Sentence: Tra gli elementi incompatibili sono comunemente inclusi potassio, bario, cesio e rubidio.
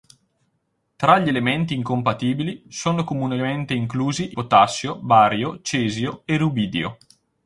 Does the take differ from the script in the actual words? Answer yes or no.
no